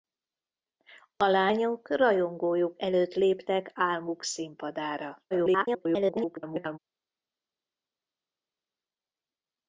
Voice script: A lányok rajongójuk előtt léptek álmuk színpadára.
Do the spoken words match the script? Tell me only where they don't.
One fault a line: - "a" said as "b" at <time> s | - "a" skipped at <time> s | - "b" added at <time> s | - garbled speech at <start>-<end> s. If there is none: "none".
- garbled speech at 5.3-6.8 s